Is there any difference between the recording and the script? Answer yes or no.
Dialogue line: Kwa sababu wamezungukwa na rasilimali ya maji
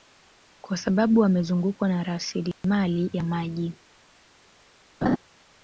no